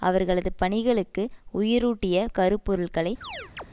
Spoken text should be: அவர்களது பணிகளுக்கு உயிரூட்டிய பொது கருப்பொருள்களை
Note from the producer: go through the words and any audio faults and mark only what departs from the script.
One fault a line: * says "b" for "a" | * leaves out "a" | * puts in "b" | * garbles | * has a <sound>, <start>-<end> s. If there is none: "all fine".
* leaves out "பொது"
* has a chirp, 3.2-3.6 s